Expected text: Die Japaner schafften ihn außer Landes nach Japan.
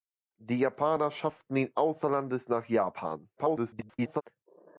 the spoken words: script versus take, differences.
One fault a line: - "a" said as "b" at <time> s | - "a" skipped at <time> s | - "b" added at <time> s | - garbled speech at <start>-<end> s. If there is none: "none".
- garbled speech at 3.4-4.2 s